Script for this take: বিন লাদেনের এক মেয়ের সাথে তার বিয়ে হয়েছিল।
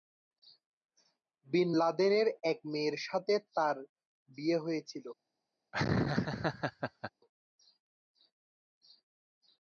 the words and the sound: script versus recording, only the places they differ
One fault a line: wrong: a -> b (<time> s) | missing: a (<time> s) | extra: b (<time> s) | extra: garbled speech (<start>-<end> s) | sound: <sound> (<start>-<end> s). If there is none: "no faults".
sound: laugh (5.7-7.1 s)